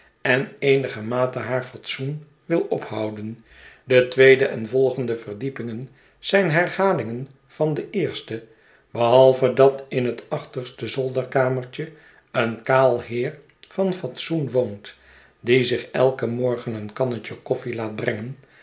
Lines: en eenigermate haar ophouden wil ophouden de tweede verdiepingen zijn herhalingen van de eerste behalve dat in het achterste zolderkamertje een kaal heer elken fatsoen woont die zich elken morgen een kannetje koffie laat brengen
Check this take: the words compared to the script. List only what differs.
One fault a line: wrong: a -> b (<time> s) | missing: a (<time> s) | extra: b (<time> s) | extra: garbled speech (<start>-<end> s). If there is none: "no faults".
wrong: ophouden -> fatsoen (1.6 s)
extra: en volgende (4.5 s)
wrong: elken -> van (13.7 s)